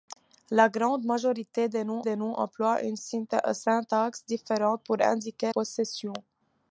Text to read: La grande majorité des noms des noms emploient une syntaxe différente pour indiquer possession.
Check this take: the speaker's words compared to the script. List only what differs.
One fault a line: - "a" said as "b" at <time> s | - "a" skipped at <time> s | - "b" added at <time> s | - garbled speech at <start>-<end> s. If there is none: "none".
none